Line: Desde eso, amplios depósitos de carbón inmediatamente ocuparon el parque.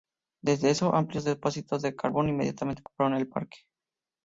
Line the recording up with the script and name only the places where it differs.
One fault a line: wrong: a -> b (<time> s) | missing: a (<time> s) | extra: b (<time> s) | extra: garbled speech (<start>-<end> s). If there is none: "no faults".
no faults